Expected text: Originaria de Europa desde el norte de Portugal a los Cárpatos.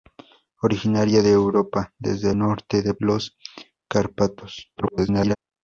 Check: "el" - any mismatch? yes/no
yes